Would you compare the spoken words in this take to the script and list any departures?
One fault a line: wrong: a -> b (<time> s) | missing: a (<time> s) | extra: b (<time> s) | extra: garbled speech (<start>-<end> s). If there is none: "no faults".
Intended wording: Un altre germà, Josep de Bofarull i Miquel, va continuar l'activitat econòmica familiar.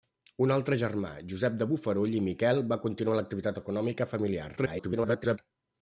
extra: garbled speech (4.6-5.4 s)